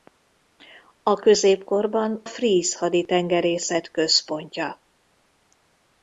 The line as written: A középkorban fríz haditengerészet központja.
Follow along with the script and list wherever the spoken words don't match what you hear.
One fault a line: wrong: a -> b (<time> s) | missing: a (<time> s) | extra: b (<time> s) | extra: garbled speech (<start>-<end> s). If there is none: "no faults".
no faults